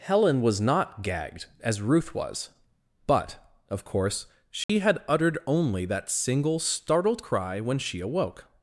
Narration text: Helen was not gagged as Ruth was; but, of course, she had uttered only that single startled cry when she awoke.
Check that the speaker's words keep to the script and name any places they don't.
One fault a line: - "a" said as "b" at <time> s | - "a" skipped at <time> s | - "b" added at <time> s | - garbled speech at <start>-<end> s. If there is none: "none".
none